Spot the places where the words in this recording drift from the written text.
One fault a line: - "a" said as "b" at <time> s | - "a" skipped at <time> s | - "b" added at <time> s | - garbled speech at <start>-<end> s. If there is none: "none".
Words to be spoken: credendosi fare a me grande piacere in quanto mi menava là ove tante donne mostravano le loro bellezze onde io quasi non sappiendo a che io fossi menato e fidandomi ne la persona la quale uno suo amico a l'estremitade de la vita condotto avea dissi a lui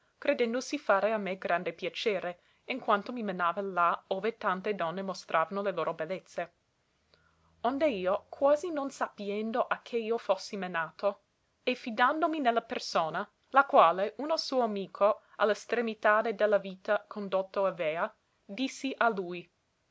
none